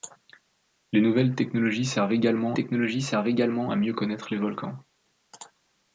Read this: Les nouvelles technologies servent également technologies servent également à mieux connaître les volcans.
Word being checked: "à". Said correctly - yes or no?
yes